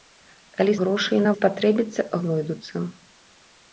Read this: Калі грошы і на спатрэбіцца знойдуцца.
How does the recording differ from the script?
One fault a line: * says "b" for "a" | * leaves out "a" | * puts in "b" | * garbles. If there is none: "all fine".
all fine